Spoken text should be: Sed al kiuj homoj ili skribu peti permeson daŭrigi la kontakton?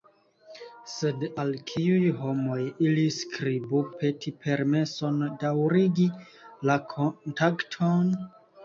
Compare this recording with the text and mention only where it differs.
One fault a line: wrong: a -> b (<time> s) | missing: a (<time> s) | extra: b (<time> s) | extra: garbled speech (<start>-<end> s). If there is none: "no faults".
no faults